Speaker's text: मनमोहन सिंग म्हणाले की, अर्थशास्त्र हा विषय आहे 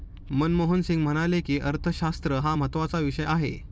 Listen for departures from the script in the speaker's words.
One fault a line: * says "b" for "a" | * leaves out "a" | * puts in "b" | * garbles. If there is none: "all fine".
* puts in "महत्त्वाचा"